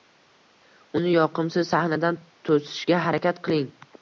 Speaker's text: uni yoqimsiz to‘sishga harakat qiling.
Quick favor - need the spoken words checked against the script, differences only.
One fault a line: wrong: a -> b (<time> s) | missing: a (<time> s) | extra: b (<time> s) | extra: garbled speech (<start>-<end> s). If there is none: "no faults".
extra: sahnadan (1.7 s)